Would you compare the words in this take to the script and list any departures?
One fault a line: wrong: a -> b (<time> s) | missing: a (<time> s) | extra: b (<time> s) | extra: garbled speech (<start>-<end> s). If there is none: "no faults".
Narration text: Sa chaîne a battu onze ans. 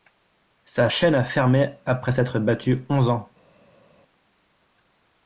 extra: fermé après s'être (1.2 s)